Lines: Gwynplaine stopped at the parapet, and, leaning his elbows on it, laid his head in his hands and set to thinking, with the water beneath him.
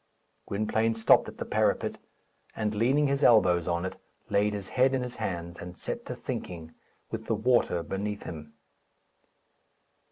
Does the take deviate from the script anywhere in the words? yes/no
no